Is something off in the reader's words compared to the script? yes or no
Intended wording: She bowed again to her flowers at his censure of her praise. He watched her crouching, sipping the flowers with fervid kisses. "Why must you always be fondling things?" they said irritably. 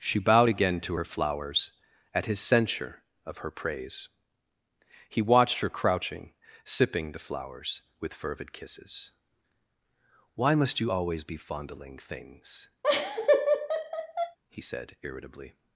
yes